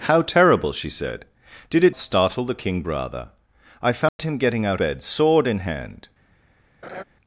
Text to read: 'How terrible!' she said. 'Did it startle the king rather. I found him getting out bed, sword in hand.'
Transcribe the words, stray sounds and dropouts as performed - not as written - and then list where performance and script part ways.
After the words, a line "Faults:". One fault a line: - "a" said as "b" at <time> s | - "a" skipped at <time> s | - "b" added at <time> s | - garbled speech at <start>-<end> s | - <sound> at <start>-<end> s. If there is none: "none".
'How terrible!' she said. 'Did it startle the king rather. I found him getting out bed, sword in hand.'
Faults:
- dropout at 4.1-4.2 s
- laugh at 6.8-7.0 s